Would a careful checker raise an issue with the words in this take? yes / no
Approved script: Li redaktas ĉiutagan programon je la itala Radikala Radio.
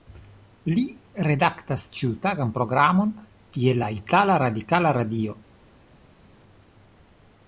no